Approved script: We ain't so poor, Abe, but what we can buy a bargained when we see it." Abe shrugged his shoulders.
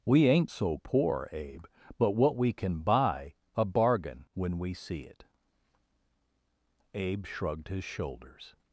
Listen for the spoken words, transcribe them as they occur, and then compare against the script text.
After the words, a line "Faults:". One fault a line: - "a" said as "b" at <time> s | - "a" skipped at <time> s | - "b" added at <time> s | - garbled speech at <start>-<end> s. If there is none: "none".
We ain't so poor, Abe, but what we can buy a bargain when we see it." Abe shrugged his shoulders.
Faults:
- "bargained" said as "bargain" at 3.6 s